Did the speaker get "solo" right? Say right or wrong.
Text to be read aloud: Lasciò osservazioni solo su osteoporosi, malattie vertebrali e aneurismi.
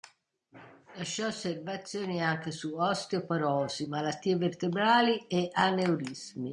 wrong